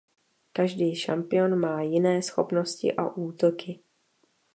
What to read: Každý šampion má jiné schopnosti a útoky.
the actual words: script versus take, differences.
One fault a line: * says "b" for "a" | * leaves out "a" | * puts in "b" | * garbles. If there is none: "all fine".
all fine